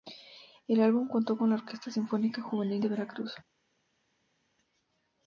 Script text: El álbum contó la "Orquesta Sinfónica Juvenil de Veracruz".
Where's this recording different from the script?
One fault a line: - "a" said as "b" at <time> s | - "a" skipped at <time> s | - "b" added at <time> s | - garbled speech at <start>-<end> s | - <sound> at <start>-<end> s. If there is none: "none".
- "con" added at 1.4 s